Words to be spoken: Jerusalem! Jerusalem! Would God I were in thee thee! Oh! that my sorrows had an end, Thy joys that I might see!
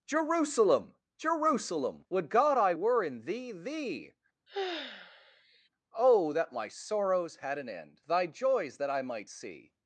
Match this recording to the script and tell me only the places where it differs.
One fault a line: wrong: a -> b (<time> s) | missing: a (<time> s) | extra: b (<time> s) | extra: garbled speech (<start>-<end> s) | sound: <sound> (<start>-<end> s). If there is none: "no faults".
sound: sigh (4.5-5.7 s)